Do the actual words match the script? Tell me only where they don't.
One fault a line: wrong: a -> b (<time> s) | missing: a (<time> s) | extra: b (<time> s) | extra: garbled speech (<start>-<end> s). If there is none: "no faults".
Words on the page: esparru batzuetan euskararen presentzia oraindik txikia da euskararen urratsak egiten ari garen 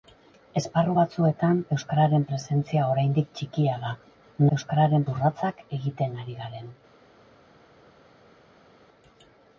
no faults